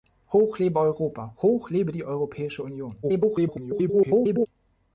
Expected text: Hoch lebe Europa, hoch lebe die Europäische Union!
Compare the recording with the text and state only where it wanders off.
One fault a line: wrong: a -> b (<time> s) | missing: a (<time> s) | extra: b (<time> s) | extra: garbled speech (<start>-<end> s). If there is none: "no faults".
extra: garbled speech (3.0-4.5 s)